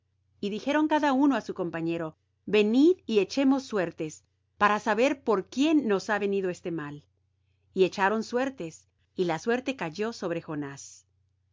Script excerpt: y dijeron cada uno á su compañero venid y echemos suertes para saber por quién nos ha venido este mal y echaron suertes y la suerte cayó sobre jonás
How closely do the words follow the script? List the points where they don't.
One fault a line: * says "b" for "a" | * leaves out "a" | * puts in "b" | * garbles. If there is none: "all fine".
all fine